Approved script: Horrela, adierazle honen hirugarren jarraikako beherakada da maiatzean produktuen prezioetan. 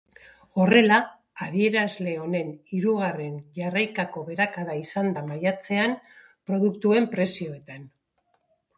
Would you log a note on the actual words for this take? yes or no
yes